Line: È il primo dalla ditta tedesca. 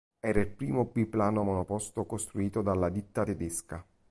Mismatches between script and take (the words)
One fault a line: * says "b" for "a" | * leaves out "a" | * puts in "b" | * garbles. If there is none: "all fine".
* says "Era" for "È"
* puts in "biplano monoposto costruito"